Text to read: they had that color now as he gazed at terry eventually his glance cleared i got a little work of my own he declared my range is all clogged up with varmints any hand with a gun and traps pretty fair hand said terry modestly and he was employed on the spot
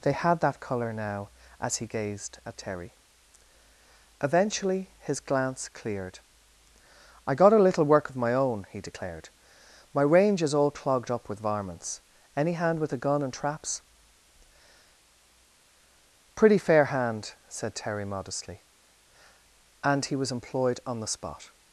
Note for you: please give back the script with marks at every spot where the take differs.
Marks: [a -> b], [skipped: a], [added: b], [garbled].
they had that color now as he gazed at terry eventually his glance cleared i got a little work of my own he declared my range is all clogged up with varmints any hand with a gun and traps pretty fair hand said terry modestly and he was employed on the spot